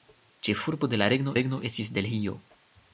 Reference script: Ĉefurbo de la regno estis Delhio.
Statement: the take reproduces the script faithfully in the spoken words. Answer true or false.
false